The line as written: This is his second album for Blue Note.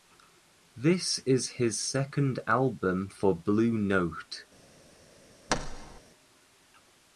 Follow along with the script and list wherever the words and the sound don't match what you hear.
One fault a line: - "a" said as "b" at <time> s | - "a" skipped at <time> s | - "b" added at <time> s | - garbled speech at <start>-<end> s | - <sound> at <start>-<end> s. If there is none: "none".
- thud at 5.5-6.0 s